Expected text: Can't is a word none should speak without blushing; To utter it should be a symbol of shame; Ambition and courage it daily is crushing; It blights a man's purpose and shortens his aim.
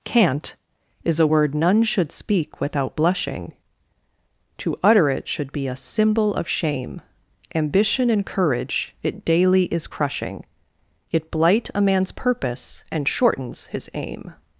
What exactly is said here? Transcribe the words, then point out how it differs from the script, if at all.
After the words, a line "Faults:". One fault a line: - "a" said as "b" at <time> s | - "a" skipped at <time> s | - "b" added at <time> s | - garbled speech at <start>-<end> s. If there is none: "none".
Can't is a word none should speak without blushing; To utter it should be a symbol of shame; Ambition and courage it daily is crushing; It blight a man's purpose and shortens his aim.
Faults:
- "blights" said as "blight" at 11.3 s